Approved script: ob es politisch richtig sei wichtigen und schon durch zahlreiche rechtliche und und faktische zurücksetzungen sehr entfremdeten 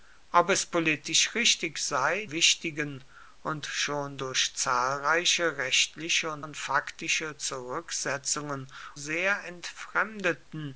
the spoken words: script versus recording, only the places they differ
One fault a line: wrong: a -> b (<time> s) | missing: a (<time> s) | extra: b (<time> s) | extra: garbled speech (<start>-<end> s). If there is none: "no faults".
no faults